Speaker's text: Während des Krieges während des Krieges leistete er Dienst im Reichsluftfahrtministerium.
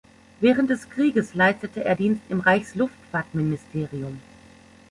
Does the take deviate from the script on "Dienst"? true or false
false